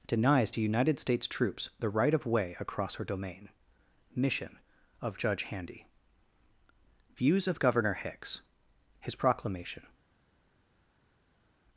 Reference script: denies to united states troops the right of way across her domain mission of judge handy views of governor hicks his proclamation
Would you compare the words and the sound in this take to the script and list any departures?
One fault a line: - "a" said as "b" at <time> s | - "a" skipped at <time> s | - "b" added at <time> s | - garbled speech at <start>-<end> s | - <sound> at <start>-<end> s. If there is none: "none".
none